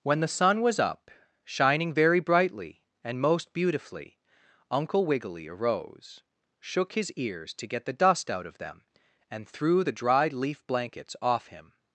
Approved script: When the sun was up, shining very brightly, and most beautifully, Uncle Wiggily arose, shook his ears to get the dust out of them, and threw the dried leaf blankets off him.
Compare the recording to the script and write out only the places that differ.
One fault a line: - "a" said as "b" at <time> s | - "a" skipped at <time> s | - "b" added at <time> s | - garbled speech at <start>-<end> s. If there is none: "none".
none